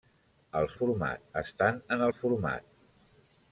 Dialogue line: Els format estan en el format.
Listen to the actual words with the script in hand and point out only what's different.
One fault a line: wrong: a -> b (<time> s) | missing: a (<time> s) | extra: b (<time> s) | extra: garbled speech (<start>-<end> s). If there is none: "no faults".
no faults